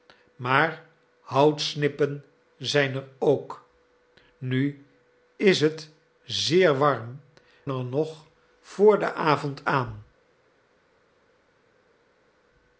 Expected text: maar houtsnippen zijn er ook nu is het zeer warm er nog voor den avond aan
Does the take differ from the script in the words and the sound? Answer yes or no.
no